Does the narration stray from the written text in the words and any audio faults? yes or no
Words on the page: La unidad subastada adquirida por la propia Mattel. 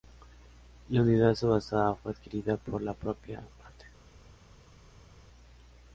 yes